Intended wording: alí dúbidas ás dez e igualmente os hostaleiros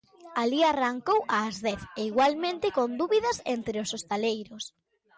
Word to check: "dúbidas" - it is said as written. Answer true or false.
false